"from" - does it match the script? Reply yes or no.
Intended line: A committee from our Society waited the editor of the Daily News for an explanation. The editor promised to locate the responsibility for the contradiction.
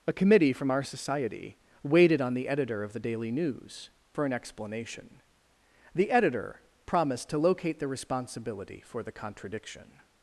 yes